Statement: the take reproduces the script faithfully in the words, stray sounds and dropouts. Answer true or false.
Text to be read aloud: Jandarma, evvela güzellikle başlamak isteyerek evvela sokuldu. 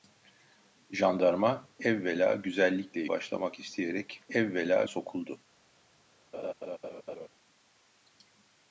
false